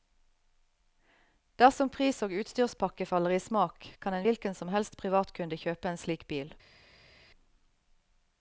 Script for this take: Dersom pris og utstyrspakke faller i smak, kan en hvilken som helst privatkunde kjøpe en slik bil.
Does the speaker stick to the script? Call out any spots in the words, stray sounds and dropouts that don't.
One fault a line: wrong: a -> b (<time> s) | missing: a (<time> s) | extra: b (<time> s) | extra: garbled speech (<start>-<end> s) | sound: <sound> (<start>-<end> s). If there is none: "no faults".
no faults